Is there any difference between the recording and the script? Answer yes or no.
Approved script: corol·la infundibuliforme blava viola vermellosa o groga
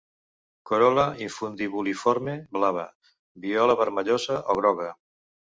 no